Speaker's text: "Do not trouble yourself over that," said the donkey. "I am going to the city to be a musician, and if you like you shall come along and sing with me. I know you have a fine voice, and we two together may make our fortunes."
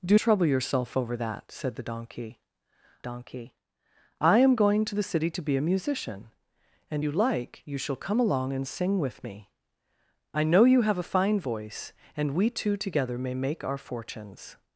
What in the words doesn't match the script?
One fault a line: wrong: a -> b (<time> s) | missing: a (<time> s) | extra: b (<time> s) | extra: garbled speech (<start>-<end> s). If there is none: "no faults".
missing: not (0.2 s)
extra: donkey (3.0 s)
missing: if (7.1 s)